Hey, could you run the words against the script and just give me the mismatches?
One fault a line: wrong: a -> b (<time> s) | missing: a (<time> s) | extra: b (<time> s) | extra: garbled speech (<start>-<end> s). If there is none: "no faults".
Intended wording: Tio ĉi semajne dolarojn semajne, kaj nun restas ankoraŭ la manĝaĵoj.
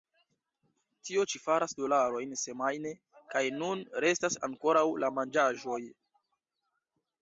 wrong: semajne -> faras (1.4 s)